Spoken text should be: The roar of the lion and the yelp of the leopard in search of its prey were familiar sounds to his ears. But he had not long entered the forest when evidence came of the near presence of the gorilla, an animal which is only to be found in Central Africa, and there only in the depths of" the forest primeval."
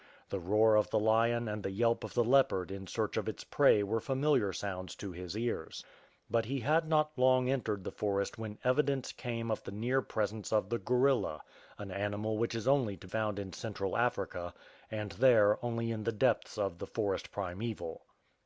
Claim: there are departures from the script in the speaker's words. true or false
true